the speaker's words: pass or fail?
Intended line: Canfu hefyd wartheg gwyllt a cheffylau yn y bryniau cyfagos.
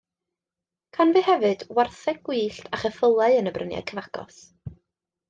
pass